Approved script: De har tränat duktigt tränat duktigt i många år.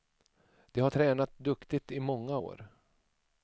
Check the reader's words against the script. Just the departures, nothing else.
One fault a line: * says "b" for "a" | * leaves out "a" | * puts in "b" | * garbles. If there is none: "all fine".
* leaves out "tränat duktigt"